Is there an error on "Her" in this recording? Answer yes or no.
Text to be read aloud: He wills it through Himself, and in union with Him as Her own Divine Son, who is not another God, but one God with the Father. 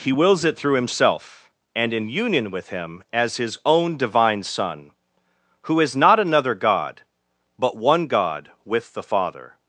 yes